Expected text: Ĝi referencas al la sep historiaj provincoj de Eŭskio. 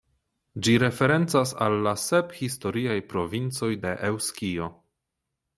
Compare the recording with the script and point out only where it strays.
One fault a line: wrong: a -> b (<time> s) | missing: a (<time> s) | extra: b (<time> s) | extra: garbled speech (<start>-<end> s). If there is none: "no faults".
no faults